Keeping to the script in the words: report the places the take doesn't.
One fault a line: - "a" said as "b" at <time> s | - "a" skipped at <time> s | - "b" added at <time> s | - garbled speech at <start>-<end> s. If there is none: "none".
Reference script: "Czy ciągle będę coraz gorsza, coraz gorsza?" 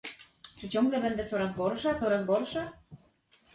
none